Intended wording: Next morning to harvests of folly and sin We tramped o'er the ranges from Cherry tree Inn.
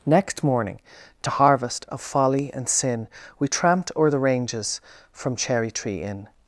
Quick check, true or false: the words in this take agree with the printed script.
false